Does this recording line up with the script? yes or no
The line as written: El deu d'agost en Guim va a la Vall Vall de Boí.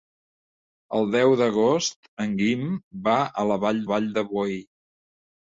yes